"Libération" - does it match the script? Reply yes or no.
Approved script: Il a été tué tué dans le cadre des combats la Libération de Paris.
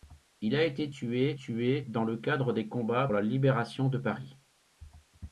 yes